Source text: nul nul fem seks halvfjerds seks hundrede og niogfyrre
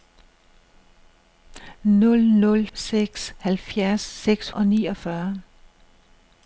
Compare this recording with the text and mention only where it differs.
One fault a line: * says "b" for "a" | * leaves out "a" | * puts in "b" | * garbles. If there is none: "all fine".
* leaves out "fem"
* leaves out "hundrede"